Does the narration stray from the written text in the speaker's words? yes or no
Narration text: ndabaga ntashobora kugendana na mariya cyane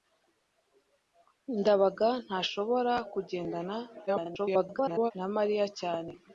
yes